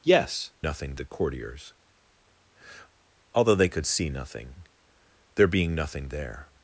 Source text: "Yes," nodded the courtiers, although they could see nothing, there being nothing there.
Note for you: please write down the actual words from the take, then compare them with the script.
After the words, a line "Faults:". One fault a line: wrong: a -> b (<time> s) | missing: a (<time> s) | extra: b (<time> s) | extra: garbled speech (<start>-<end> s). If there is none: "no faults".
"Yes," nothing the courtiers, although they could see nothing, there being nothing there.
Faults:
wrong: nodded -> nothing (0.6 s)